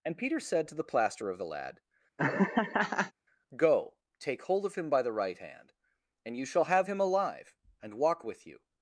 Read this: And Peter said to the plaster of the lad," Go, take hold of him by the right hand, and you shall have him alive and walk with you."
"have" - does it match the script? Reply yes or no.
yes